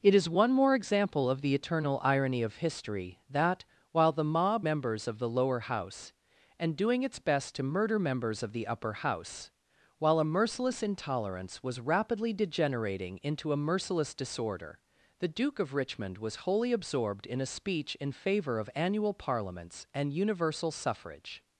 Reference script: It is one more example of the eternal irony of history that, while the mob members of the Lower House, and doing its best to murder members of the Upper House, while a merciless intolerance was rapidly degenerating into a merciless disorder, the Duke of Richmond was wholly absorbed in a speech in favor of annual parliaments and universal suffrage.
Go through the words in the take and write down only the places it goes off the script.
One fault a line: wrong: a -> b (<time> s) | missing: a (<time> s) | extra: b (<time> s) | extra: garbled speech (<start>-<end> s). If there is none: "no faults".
no faults